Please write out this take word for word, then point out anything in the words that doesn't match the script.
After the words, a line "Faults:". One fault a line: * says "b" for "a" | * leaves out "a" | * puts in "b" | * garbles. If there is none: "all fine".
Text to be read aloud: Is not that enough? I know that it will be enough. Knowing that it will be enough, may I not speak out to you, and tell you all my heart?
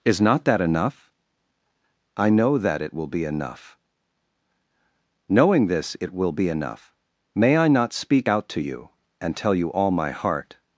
Is not that enough? I know that it will be enough. Knowing this it will be enough, may I not speak out to you, and tell you all my heart?
Faults:
* says "this" for "that"